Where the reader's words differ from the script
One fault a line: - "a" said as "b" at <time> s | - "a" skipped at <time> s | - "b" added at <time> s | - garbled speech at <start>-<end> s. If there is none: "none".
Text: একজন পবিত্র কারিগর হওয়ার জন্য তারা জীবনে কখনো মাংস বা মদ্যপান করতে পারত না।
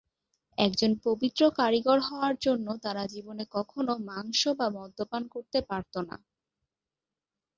none